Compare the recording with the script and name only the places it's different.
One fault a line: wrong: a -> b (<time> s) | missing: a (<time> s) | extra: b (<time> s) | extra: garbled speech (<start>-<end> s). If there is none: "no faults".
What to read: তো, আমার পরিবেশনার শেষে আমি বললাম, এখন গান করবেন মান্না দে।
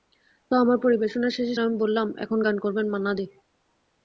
no faults